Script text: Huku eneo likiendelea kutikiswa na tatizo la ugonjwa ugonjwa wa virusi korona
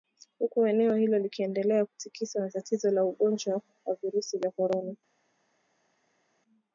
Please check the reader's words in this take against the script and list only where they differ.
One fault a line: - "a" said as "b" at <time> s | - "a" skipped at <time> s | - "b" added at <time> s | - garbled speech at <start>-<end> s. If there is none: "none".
- "hilo" added at 0.9 s
- "ugonjwa" skipped at 3.6 s
- "vya" added at 4.4 s